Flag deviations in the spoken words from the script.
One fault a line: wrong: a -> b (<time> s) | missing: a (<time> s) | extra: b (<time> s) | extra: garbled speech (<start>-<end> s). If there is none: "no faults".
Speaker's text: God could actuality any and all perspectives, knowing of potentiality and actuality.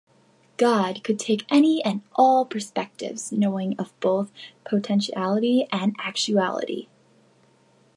wrong: actuality -> take (1.2 s)
extra: both (4.0 s)